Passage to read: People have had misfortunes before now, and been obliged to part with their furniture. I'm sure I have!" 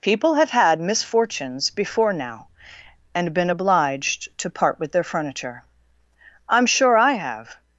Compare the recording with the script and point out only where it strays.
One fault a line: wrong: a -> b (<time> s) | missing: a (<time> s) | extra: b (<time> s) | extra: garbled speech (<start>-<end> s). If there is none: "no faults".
no faults